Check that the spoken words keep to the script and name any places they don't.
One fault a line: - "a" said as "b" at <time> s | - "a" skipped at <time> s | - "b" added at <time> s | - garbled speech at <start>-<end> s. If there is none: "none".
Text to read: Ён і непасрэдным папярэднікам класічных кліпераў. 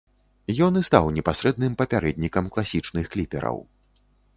- "стаў" added at 0.9 s